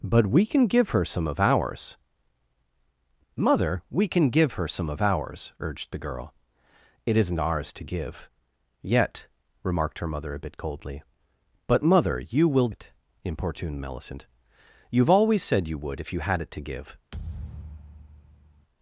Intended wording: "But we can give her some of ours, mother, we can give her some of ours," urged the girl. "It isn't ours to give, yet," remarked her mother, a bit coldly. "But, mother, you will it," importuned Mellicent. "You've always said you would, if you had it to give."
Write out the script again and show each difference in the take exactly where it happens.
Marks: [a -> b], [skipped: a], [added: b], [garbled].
"But we can give her some of ours, mother, we can give her some of ours," urged the girl. "It isn't ours to give, yet," remarked her mother, a bit coldly. "But, mother, you will it," importuned Mellicent. "You've always said you would, if you had it to give."